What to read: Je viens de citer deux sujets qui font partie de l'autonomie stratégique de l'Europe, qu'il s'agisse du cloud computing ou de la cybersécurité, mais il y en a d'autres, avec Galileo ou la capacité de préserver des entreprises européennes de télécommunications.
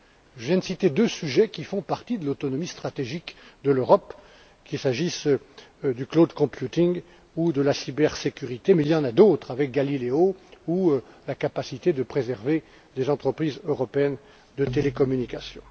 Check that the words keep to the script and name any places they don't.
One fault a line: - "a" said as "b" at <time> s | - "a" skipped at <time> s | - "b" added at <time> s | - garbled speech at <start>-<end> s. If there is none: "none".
none